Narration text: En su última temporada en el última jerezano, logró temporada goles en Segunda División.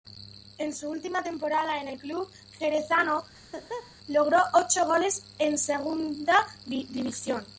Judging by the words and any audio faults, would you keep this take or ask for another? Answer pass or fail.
fail